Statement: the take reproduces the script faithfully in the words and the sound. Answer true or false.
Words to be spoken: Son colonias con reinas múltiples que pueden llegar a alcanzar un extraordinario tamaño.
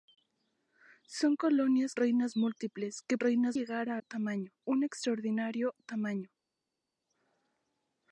false